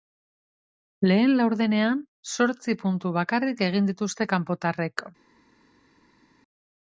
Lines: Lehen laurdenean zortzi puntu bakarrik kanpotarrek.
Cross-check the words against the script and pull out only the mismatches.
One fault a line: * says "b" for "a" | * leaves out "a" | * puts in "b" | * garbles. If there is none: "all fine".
* puts in "egin dituzte"